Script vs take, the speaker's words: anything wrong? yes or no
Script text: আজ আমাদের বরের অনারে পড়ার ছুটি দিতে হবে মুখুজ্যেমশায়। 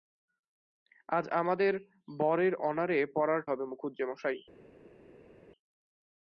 yes